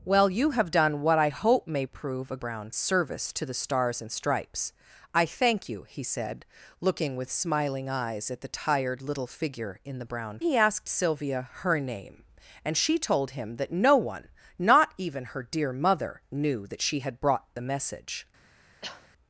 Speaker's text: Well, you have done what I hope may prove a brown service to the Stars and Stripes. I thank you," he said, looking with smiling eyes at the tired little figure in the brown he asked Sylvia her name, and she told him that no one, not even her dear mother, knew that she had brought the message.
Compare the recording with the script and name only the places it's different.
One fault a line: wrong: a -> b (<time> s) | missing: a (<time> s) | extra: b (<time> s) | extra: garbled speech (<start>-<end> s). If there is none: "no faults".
no faults